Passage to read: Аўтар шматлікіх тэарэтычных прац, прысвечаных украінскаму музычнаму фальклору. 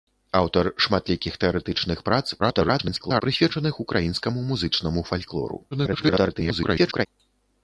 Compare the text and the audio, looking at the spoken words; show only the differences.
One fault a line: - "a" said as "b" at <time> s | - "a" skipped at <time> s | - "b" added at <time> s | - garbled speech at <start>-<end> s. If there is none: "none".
- garbled speech at 2.4-3.2 s
- garbled speech at 5.7-7.1 s